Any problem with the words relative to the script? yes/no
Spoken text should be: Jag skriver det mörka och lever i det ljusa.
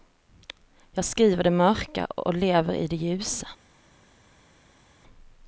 no